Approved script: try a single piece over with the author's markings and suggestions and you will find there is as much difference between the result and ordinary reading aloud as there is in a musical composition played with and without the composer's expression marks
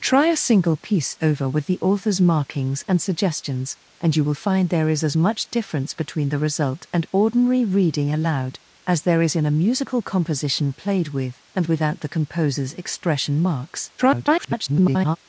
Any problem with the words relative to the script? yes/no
yes